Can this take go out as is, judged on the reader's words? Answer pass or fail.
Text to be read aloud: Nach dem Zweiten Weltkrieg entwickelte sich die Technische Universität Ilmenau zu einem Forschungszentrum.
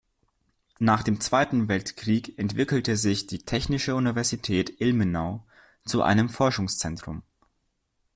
pass